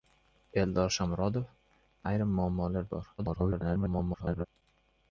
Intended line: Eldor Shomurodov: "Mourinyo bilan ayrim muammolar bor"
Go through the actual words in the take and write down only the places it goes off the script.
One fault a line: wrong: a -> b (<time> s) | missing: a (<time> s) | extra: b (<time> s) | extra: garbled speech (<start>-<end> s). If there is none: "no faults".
missing: Mourinyo bilan (1.4 s)
extra: garbled speech (3.2-4.5 s)